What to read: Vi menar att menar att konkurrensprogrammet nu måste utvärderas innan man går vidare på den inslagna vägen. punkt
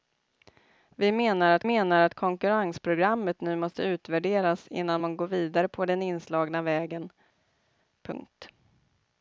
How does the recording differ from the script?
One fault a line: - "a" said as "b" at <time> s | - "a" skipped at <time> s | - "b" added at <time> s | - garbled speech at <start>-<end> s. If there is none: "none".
none